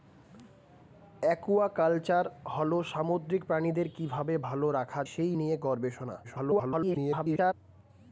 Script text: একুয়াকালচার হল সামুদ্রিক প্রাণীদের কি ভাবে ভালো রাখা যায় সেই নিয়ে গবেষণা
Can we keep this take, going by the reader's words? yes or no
no